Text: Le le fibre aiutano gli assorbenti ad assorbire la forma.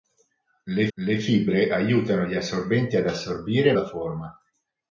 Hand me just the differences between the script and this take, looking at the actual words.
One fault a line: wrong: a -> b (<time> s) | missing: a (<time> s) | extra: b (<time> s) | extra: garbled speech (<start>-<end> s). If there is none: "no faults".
no faults